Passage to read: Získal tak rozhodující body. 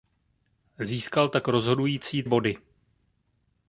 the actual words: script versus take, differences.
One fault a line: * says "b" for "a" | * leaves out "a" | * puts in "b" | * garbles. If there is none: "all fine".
all fine